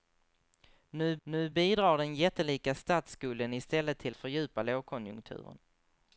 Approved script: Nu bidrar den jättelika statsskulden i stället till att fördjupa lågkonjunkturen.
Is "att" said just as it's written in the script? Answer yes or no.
no